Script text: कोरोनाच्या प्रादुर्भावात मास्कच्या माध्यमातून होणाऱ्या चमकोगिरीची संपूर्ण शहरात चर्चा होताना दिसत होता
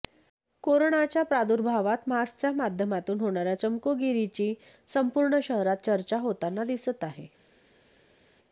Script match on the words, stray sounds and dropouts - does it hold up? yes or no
no